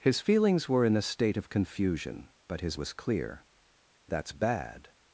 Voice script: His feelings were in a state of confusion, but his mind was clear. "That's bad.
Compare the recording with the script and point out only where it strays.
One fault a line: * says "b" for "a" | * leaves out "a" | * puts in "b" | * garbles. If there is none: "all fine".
* leaves out "mind"